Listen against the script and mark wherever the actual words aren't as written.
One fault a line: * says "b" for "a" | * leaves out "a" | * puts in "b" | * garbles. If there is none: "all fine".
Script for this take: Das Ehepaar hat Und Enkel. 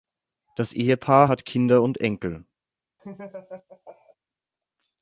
* puts in "Kinder"